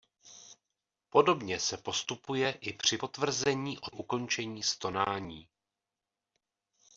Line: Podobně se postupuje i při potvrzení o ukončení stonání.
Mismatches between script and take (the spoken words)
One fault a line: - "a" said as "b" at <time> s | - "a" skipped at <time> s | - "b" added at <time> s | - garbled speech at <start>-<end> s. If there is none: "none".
none